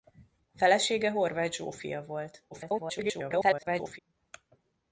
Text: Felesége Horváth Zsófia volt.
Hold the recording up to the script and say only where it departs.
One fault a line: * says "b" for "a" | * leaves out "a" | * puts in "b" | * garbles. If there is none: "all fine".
* garbles